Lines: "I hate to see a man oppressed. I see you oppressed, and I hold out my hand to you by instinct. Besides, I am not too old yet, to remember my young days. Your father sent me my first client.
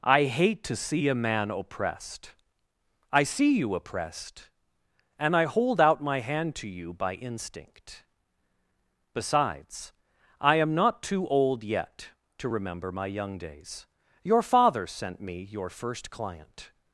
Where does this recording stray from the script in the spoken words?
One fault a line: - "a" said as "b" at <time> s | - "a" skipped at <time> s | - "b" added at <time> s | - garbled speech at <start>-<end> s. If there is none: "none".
- "my" said as "your" at 15.4 s